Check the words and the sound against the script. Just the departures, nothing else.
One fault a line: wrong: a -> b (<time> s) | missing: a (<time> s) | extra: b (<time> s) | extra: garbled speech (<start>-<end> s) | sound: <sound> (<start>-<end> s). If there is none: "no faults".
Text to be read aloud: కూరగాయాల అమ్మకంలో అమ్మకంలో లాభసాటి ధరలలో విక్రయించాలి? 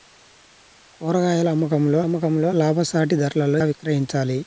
no faults